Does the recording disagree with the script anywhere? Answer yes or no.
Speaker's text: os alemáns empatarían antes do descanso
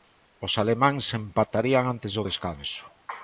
no